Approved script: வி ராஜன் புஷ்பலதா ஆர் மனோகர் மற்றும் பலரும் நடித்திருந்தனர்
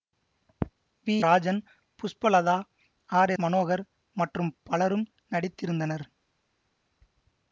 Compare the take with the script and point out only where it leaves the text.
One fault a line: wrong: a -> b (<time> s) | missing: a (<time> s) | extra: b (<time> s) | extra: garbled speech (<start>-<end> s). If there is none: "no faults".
no faults